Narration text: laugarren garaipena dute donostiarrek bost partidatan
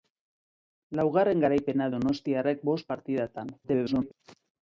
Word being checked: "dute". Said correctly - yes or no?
no